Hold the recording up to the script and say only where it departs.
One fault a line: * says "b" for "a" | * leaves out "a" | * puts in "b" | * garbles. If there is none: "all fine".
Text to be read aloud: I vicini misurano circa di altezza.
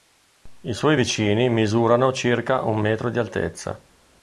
* puts in "suoi"
* puts in "un metro"